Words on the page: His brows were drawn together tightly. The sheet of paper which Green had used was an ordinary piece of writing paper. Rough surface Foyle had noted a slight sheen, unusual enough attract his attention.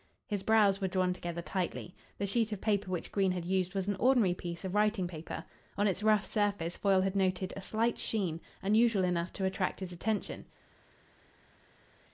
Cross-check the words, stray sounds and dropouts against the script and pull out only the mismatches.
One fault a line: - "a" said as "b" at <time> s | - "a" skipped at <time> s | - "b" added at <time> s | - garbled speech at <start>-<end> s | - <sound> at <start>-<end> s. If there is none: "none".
- "On its" added at 5.8 s
- "to" added at 9.3 s